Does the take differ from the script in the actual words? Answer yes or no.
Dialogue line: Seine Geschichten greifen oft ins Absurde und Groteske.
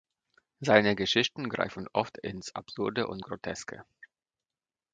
no